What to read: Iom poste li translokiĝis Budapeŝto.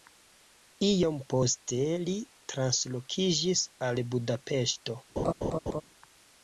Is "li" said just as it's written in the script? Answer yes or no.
yes